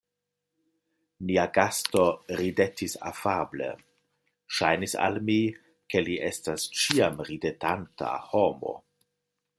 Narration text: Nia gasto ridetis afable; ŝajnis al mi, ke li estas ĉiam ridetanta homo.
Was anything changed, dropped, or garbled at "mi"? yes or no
no